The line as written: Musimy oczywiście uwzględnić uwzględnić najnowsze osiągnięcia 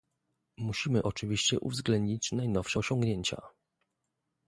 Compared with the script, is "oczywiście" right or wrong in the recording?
right